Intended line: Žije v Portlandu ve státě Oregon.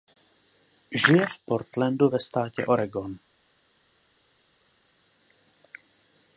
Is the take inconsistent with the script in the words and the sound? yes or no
no